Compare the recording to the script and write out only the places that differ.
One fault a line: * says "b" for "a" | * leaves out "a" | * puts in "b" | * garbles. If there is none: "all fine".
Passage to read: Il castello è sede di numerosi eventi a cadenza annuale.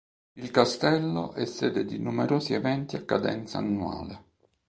all fine